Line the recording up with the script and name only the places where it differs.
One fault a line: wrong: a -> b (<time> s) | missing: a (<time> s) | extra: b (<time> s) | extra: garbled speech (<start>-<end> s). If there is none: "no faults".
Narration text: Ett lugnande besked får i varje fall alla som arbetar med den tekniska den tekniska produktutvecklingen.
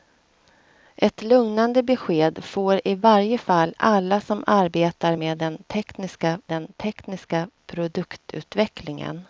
no faults